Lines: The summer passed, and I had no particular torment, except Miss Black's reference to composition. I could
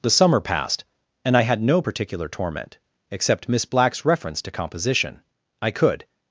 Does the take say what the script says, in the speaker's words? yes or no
yes